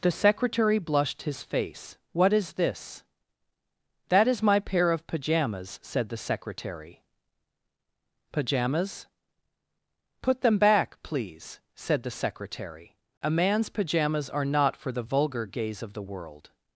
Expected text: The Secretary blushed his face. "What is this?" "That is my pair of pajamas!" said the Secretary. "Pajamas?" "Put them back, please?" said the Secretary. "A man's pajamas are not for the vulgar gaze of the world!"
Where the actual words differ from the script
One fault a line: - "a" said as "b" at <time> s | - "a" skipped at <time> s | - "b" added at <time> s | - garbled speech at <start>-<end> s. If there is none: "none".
none